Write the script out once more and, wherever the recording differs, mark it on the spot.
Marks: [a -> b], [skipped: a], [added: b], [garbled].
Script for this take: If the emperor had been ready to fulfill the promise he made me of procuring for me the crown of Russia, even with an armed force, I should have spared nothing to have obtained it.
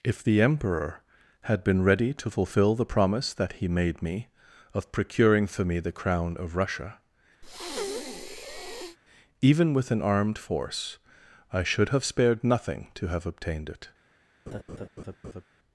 If the emperor had been ready to fulfill the promise [added: that] he made me of procuring for me the crown of Russia, even with an armed force, I should have spared nothing to have obtained it.